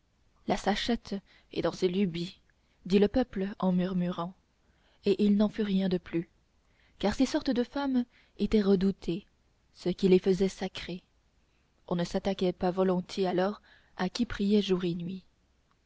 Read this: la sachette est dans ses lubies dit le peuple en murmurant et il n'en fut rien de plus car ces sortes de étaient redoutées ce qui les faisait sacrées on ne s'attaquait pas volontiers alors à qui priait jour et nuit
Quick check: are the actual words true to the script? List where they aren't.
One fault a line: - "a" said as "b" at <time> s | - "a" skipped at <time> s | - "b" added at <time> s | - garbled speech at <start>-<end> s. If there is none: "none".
- "femmes" added at 7.6 s